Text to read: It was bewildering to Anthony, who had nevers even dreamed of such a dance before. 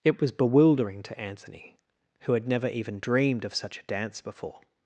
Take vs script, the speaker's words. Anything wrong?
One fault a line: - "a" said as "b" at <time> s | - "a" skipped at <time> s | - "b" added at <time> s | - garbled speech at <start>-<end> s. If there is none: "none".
- "nevers" said as "never" at 2.5 s